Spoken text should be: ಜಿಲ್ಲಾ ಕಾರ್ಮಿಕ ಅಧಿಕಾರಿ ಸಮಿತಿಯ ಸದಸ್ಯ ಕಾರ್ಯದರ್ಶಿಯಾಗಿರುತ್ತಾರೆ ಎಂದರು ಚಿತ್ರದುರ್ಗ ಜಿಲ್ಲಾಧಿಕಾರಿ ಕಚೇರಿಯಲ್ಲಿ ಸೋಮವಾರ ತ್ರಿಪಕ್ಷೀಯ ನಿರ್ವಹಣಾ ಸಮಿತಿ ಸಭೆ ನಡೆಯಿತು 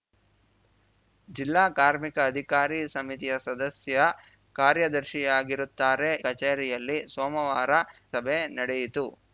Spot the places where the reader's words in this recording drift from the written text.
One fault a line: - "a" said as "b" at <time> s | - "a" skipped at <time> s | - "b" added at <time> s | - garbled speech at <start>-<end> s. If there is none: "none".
- "ಎಂದರು ಚಿತ್ರದುರ್ಗ ಜಿಲ್ಲಾಧಿಕಾರಿ" skipped at 6.1 s
- "ತ್ರಿಪಕ್ಷೀಯ ನಿರ್ವಹಣಾ ಸಮಿತಿ" skipped at 7.7 s